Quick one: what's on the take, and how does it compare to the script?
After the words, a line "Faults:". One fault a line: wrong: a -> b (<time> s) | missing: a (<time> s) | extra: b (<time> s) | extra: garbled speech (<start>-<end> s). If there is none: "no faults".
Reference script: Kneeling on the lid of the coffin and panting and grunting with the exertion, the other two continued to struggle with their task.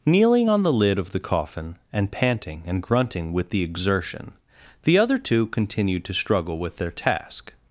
Kneeling on the lid of the coffin and panting and grunting with the exertion, the other two continued to struggle with their task.
Faults:
no faults